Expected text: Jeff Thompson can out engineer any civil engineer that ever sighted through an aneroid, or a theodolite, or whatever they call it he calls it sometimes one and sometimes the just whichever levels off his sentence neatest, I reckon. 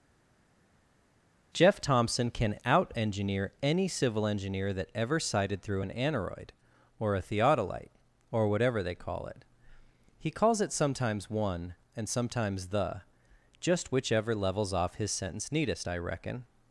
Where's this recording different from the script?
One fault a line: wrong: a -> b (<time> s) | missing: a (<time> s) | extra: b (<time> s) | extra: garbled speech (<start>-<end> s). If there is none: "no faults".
no faults